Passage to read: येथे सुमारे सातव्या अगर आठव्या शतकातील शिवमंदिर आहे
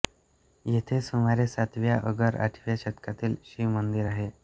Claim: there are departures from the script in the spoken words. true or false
false